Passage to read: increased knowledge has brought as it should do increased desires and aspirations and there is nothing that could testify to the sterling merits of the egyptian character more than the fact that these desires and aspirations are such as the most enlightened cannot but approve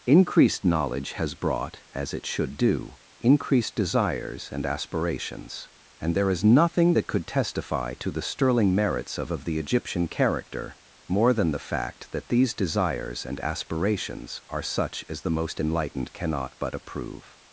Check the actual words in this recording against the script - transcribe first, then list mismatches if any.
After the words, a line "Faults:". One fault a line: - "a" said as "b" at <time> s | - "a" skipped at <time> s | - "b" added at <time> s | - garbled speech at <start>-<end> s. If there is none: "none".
increased knowledge has brought as it should do increased desires and aspirations and there is nothing that could testify to the sterling merits of of the egyptian character more than the fact that these desires and aspirations are such as the most enlightened cannot but approve
Faults:
- "of" added at 9.3 s